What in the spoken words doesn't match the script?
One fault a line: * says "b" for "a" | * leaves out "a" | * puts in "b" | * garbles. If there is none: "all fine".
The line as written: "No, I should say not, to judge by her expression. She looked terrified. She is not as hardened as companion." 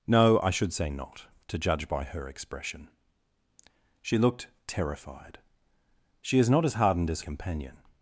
all fine